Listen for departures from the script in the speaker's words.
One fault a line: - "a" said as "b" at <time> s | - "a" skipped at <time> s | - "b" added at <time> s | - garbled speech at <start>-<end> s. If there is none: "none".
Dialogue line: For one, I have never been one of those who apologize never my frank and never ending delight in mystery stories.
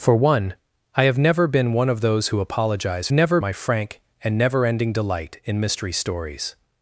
none